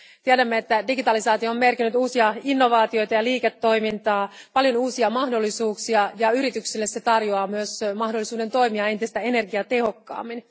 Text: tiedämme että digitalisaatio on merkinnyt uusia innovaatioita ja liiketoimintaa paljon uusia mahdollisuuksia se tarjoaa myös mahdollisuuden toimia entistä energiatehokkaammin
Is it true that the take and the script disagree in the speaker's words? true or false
true